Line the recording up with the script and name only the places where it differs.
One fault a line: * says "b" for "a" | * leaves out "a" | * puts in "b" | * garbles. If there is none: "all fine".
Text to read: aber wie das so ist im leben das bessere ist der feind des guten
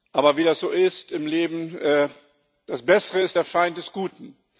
all fine